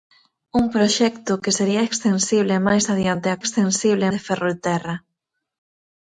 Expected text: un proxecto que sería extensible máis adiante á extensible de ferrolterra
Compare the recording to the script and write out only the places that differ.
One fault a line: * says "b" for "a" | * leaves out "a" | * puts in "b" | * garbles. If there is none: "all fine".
all fine